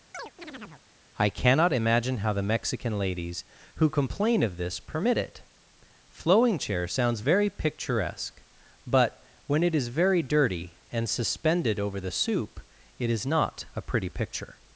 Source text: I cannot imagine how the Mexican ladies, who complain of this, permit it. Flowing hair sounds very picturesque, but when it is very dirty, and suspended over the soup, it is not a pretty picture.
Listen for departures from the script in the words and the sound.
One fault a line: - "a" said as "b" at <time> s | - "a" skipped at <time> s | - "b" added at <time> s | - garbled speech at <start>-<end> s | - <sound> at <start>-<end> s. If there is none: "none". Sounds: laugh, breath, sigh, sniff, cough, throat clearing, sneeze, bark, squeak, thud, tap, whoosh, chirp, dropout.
- chirp at 0.1-0.8 s
- "hair" said as "chair" at 6.6 s